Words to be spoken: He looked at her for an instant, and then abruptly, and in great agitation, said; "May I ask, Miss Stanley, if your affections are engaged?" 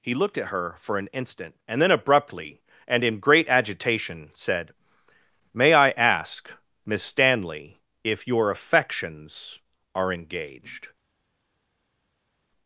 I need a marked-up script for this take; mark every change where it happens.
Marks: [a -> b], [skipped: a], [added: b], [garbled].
He looked at her for an instant, and then abruptly, and in great agitation, said; "May I ask, Miss Stanley, if your affections are engaged?"